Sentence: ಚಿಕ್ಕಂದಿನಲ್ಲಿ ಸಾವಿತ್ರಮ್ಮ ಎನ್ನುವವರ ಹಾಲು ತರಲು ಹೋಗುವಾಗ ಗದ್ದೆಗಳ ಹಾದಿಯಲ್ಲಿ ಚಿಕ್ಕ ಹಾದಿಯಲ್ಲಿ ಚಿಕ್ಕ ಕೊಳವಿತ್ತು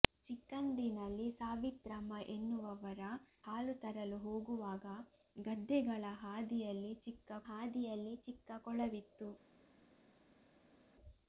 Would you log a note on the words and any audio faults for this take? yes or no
no